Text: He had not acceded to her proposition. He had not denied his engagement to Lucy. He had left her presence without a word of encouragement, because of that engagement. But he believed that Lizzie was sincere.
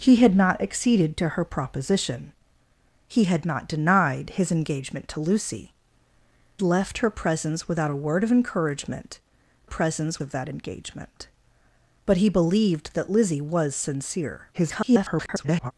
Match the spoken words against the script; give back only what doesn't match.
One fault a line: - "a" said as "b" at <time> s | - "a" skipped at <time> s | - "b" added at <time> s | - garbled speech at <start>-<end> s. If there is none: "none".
- "He had" skipped at 5.8 s
- "because" said as "presence" at 9.7 s
- garbled speech at 14.5-15.7 s